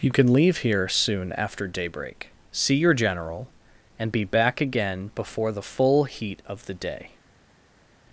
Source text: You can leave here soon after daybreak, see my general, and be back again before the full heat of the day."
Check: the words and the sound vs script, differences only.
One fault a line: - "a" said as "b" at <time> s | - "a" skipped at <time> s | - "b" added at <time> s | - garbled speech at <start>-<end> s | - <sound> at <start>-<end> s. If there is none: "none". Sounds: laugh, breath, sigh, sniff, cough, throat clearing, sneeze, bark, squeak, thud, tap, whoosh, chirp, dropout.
- "my" said as "your" at 2.7 s